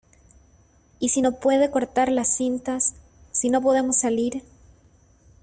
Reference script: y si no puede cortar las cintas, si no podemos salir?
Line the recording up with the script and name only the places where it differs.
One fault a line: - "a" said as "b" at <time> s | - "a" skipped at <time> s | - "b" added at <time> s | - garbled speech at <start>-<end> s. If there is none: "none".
none